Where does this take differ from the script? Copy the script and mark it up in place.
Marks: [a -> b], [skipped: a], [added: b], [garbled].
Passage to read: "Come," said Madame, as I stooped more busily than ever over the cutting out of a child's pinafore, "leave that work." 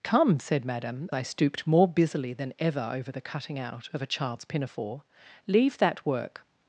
"Come," said Madame, [skipped: as] I stooped more busily than ever over the cutting out of a child's pinafore, "leave that work."